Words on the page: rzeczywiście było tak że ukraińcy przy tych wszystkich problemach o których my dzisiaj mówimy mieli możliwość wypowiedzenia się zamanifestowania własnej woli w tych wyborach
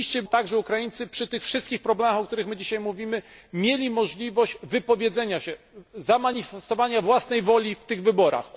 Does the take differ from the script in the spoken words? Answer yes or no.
yes